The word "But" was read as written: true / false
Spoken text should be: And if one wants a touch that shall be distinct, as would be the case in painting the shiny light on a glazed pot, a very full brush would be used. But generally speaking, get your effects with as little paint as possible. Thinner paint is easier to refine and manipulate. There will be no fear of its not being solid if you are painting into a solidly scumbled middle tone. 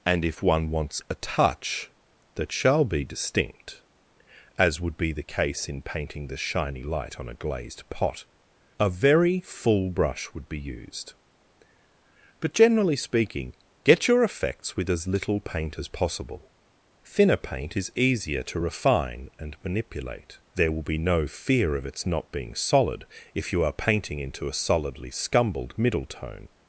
true